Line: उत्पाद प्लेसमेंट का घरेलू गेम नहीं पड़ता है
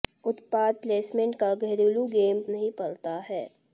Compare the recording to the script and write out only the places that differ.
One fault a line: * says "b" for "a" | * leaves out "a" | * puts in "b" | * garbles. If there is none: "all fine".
all fine